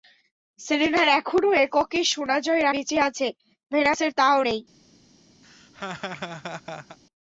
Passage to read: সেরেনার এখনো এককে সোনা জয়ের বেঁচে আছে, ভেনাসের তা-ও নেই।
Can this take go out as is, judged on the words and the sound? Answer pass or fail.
fail